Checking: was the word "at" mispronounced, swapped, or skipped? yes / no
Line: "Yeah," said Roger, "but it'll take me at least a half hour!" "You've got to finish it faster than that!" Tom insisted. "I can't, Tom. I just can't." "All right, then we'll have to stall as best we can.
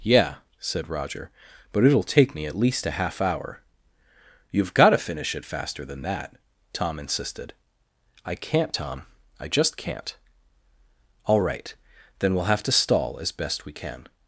no